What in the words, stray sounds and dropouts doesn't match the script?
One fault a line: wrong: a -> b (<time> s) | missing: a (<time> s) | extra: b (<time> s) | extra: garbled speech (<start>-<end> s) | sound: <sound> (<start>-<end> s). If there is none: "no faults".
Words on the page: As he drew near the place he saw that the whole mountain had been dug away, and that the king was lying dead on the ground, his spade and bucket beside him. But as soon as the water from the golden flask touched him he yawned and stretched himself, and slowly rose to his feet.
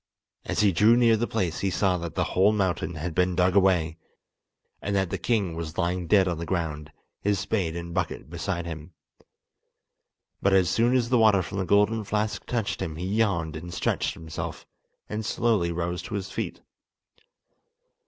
no faults